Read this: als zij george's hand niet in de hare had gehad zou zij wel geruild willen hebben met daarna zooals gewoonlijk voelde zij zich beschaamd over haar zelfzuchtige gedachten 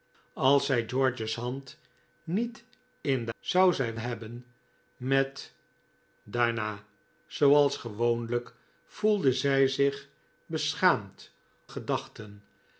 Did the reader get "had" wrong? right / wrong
wrong